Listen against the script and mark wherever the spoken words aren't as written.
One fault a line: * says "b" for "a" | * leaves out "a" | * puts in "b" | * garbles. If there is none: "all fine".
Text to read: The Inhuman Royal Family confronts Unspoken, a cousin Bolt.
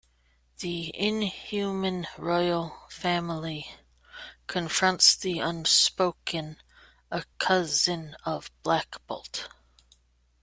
* puts in "the"
* puts in "of Black"